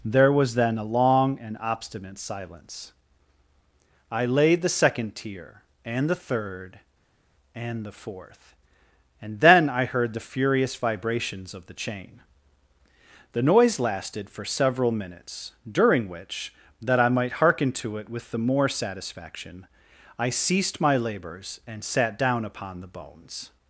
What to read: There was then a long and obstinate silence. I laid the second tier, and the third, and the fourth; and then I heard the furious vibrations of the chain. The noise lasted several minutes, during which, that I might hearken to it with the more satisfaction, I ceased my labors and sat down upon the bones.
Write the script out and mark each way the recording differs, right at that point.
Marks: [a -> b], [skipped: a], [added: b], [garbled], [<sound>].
There was then a long and obstinate silence. I laid the second tier, and the third, and the fourth; and then I heard the furious vibrations of the chain. The noise lasted [added: for] several minutes, during which, that I might hearken to it with the more satisfaction, I ceased my labors and sat down upon the bones.